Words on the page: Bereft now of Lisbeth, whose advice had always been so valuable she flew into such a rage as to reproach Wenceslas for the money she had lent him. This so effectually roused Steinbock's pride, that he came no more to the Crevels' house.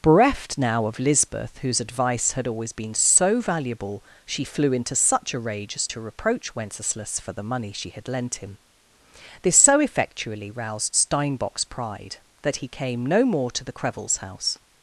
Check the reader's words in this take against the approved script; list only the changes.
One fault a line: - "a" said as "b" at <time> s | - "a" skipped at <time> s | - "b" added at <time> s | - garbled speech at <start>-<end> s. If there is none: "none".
none